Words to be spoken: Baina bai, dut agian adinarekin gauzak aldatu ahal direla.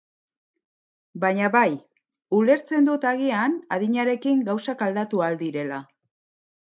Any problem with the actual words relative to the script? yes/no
yes